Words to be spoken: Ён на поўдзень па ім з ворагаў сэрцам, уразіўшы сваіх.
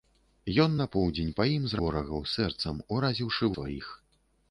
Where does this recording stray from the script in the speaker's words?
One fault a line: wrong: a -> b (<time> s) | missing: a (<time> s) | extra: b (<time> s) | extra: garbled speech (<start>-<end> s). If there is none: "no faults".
no faults